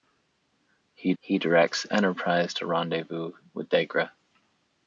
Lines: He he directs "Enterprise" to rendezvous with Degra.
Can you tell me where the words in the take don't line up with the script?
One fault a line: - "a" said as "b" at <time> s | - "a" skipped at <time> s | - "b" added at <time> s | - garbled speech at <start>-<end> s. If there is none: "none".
none